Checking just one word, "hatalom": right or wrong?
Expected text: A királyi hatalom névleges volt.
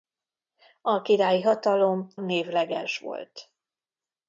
right